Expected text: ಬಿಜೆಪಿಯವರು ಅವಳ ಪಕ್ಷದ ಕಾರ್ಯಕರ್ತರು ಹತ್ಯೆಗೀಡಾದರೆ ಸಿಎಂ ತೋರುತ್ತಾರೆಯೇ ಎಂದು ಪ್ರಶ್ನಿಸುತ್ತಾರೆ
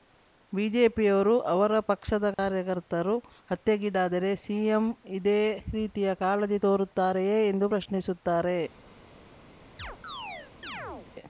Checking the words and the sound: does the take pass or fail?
fail